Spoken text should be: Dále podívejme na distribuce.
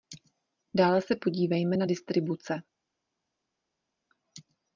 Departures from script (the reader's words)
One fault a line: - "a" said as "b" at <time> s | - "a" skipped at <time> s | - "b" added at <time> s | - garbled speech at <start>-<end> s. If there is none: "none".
- "se" added at 1.0 s